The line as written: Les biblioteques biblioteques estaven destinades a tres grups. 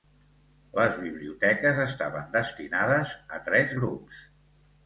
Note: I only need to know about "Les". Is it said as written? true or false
true